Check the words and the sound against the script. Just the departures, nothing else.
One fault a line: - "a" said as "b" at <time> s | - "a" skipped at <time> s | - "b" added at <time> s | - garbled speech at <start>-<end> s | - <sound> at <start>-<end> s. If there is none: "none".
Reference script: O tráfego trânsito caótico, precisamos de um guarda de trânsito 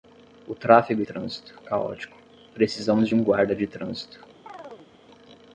- chirp at 4.5-4.9 s